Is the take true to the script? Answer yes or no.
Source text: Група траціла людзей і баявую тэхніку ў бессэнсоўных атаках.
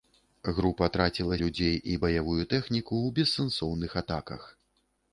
yes